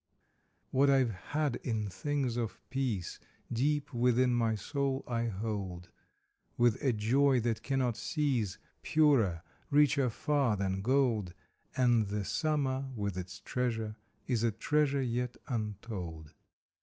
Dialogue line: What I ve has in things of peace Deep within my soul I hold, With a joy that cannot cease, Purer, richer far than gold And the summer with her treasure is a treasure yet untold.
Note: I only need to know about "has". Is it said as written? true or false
false